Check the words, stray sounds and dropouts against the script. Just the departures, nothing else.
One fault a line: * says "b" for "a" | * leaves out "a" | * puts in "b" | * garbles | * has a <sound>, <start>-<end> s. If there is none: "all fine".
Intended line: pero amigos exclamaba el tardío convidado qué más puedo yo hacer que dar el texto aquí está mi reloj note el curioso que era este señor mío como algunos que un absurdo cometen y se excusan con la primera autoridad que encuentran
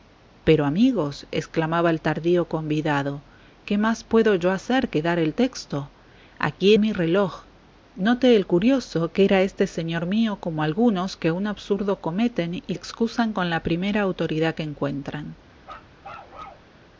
* leaves out "está"
* leaves out "se"
* has a bark, 15.6-16.7 s